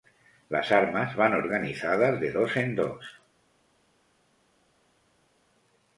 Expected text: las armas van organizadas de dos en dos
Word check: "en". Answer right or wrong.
right